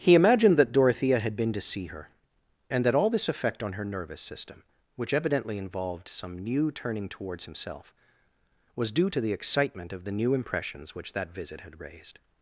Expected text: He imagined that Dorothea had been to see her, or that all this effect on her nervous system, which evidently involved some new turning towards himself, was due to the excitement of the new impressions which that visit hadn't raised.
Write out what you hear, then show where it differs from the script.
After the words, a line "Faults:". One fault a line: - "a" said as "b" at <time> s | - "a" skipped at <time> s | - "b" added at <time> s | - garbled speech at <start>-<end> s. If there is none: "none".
He imagined that Dorothea had been to see her, and that all this effect on her nervous system, which evidently involved some new turning towards himself, was due to the excitement of the new impressions which that visit had raised.
Faults:
- "or" said as "and" at 2.7 s
- "hadn't" said as "had" at 11.6 s